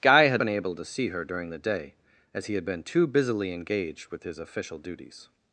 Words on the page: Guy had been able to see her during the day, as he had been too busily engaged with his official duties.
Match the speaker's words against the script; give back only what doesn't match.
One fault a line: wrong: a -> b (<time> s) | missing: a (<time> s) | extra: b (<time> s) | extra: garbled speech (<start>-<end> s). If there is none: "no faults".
no faults